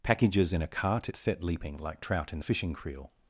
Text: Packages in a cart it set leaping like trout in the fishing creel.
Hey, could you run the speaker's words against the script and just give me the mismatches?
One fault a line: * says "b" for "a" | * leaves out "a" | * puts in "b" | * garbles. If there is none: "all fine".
all fine